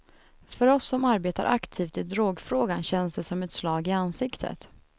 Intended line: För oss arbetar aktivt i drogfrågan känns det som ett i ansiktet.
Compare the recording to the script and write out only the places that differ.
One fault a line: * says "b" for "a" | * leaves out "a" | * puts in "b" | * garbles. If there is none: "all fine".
* puts in "som"
* puts in "slag"